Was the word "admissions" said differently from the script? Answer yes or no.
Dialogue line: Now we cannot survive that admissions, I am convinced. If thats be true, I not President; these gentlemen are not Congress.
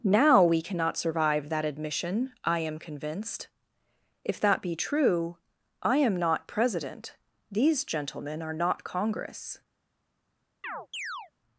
yes